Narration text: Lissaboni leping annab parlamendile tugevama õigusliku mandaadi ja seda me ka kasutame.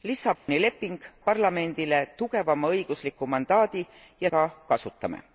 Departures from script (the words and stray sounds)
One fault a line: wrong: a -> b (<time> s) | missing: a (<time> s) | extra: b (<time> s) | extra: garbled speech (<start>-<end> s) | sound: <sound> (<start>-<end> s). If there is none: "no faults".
sound: dropout (0.4-0.5 s)
missing: annab (1.0 s)
missing: seda me (4.3 s)